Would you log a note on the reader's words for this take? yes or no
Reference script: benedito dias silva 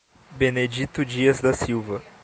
yes